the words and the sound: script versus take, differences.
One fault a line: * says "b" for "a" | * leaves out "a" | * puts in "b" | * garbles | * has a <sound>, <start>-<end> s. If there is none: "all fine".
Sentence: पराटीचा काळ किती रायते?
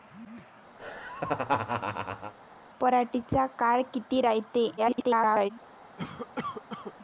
* has a laugh, 0.8-2.3 s
* garbles
* has a cough, 6.0-6.9 s